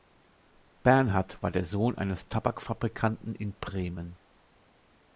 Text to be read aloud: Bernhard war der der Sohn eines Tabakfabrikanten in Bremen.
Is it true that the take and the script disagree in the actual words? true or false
true